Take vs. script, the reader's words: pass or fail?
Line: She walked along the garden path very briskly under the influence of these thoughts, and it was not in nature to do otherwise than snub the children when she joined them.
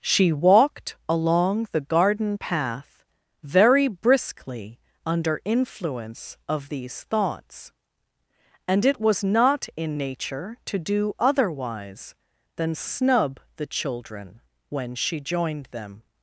fail